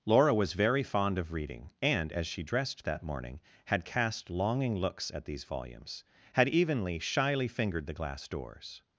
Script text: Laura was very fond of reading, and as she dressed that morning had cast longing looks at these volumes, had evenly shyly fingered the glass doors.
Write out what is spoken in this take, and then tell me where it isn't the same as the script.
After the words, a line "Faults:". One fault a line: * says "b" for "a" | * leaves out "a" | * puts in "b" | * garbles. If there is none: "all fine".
Laura was very fond of reading, and as she dressed that morning had cast longing looks at these volumes, had evenly shyly fingered the glass doors.
Faults:
all fine